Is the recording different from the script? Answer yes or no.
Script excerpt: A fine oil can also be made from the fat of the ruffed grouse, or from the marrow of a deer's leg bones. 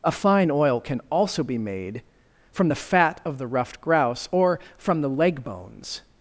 yes